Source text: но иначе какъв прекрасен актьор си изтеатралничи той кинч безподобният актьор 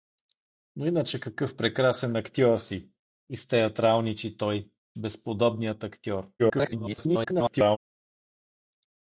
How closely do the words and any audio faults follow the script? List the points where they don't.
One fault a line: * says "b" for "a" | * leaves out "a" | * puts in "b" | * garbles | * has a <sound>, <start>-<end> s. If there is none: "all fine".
* leaves out "кинч"
* garbles